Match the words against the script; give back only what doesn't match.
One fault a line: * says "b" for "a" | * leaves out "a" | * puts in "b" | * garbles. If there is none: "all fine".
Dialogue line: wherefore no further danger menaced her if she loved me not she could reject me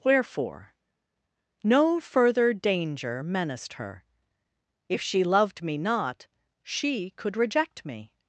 all fine